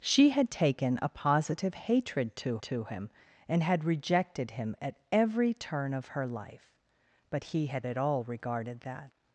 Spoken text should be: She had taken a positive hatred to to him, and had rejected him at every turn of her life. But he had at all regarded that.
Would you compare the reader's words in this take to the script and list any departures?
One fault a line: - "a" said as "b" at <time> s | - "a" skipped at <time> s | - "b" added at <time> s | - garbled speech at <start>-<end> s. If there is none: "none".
none